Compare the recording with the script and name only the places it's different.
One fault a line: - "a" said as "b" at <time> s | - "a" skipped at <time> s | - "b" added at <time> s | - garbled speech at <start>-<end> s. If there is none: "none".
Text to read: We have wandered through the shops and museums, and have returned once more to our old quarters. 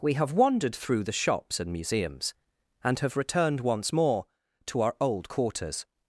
none